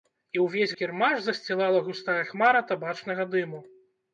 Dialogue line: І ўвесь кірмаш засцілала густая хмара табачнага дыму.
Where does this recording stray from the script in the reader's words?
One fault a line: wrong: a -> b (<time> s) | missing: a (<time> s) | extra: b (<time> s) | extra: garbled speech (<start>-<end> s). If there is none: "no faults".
no faults